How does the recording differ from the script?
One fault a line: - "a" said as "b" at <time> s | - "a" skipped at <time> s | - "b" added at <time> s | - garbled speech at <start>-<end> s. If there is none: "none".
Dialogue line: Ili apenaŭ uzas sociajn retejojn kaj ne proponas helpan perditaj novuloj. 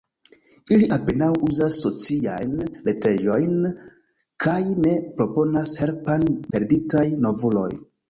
none